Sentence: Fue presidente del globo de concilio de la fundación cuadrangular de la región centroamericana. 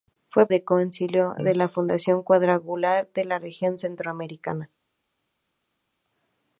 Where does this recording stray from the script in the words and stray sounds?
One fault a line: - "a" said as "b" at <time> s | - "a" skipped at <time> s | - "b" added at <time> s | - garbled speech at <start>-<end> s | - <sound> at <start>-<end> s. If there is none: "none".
- "presidente del globo" skipped at 0.5 s